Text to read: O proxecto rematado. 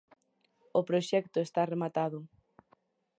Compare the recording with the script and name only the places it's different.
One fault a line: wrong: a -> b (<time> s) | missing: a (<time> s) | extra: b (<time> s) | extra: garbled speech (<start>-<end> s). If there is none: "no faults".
extra: está (1.4 s)